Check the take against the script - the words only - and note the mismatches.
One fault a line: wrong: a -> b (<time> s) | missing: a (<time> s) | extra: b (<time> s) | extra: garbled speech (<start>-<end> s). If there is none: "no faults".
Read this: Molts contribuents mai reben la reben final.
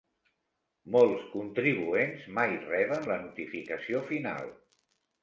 wrong: reben -> notificació (3.2 s)